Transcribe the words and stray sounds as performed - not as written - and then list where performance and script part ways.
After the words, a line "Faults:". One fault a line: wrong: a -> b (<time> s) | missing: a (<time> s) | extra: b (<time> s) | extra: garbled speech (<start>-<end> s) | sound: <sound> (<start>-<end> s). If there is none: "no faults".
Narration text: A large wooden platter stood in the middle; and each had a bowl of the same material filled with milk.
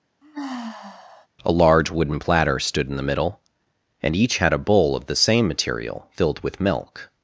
A large wooden platter stood in the middle; and each had a bowl of the same material filled with milk.
Faults:
sound: sigh (0.2-1.3 s)